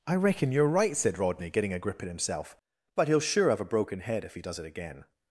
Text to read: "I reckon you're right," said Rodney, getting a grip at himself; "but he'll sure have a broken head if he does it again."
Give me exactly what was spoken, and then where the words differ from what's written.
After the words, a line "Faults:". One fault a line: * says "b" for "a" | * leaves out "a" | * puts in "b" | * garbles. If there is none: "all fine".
"I reckon you're right," said Rodney, getting a grip at himself; "but he'll sure have a broken head if he does it again."
Faults:
all fine